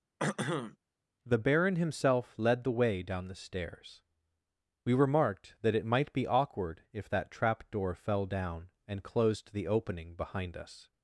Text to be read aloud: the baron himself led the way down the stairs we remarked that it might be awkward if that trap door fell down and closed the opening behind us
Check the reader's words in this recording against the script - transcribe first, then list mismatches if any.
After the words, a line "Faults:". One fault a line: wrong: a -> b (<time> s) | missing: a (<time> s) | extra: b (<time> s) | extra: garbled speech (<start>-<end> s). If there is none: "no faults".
the baron himself led the way down the stairs we remarked that it might be awkward if that trap door fell down and closed the opening behind us
Faults:
no faults